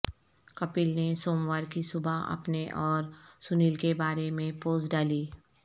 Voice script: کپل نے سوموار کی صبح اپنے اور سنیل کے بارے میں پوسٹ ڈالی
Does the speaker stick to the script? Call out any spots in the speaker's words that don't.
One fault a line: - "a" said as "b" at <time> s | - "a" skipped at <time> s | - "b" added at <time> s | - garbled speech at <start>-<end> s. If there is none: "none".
none